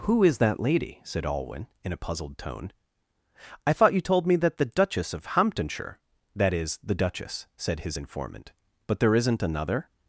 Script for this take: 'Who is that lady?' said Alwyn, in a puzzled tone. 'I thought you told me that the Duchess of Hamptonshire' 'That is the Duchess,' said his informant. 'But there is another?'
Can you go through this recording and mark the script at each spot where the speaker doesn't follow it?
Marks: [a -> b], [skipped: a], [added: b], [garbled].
'Who is that lady?' said Alwyn, in a puzzled tone. 'I thought you told me that the Duchess of Hamptonshire' 'That is the Duchess,' said his informant. 'But there [is -> isn't] another?'